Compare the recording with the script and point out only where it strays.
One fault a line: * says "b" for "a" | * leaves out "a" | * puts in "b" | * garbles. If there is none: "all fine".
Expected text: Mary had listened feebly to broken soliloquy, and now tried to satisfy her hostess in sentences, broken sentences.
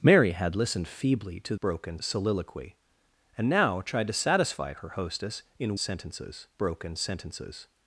all fine